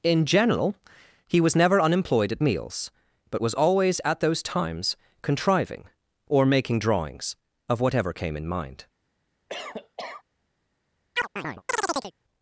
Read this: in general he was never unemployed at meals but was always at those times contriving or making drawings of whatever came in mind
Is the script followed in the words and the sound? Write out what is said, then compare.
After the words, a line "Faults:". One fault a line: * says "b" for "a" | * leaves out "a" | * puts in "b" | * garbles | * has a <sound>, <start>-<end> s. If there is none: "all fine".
in general he was never unemployed at meals but was always at those times contriving or making drawings of whatever came in mind
Faults:
* has a cough, 9.5-10.2 s
* has a chirp, 11.2-12.1 s